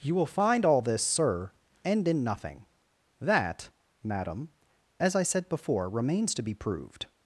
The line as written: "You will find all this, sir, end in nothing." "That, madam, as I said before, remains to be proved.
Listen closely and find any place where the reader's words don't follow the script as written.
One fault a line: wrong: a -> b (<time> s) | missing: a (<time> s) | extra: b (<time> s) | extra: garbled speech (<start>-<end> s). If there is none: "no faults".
no faults